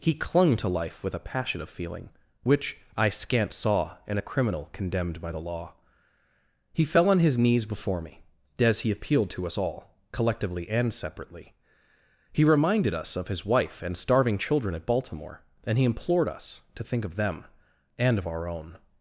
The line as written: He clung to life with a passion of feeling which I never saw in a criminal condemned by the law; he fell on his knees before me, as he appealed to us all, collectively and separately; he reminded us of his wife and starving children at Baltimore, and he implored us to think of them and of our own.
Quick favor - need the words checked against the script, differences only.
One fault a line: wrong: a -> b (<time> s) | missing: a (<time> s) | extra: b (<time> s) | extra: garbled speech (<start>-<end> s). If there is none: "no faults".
wrong: never -> scant (3.1 s)